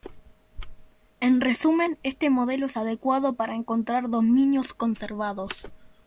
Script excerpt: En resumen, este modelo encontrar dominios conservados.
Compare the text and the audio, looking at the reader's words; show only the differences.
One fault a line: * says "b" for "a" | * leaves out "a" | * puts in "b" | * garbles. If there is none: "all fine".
* puts in "es adecuado para"